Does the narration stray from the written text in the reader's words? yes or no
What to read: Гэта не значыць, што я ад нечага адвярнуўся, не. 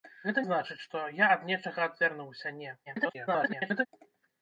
yes